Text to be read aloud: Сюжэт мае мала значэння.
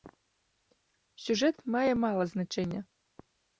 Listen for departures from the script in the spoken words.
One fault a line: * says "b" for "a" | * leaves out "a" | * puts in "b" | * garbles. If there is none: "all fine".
all fine